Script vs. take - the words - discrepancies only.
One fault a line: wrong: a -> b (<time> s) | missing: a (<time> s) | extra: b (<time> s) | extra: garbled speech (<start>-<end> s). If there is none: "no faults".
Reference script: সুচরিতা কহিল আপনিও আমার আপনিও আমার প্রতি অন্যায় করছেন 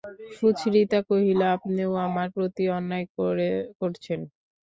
missing: আপনিও আমার (2.3 s)